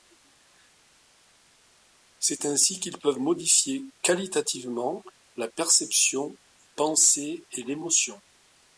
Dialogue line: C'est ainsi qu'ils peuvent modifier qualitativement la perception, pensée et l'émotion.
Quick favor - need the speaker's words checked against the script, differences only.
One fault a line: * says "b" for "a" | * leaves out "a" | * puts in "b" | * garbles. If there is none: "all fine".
all fine